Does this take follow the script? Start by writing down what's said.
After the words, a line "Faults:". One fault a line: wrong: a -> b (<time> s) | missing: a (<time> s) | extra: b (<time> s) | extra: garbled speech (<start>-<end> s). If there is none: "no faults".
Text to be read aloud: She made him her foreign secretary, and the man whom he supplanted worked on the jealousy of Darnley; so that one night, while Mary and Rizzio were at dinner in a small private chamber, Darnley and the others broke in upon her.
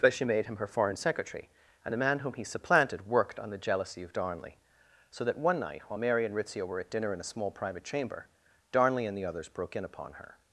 but She made him her foreign secretary, and the man whom he supplanted worked on the jealousy of Darnley; so that one night, while Mary and Rizzio were at dinner in a small private chamber, Darnley and the others broke in upon her.
Faults:
extra: but (0.0 s)